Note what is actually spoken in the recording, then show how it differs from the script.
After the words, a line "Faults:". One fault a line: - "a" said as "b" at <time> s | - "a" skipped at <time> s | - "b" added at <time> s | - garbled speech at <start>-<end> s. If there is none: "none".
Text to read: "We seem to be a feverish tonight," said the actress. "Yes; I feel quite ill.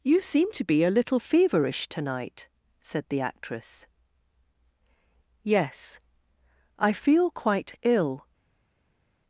"You seem to be a little feverish tonight," said the actress. "Yes; I feel quite ill.
Faults:
- "We" said as "You" at 0.0 s
- "little" added at 0.9 s